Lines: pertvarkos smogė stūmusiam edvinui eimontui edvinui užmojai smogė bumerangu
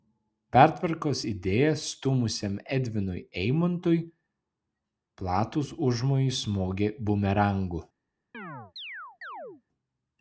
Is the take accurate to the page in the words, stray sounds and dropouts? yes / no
no